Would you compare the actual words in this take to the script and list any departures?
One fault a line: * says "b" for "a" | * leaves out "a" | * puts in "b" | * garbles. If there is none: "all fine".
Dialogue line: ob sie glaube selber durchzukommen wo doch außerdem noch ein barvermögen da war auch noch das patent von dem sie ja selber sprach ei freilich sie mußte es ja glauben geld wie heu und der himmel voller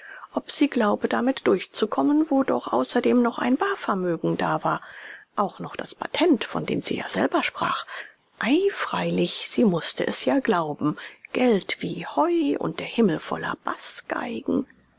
* says "damit" for "selber"